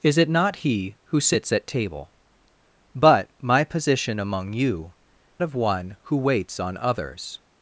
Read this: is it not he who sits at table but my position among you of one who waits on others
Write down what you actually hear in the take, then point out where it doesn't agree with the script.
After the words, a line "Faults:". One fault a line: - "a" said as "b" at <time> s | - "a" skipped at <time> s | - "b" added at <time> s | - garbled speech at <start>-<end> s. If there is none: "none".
is it not he who sits at table but my position among you of one who waits on others
Faults:
none